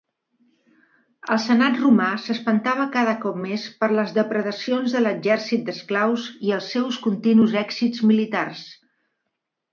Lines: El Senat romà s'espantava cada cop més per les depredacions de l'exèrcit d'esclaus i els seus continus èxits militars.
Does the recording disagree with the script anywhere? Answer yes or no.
no